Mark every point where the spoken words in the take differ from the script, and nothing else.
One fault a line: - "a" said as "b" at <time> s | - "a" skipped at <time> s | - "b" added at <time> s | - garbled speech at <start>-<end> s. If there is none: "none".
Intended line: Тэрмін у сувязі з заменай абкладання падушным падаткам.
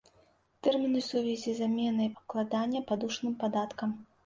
none